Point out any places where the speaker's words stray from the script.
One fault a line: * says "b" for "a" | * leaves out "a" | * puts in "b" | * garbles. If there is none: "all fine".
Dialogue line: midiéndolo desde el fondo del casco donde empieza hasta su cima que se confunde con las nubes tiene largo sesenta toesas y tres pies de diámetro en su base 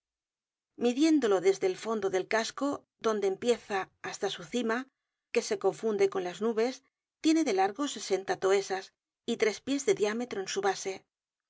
* puts in "de"